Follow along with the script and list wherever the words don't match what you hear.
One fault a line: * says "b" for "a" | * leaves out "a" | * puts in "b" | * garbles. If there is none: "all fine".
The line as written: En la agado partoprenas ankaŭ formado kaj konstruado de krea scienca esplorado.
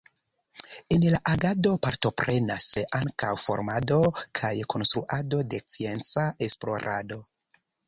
* leaves out "krea"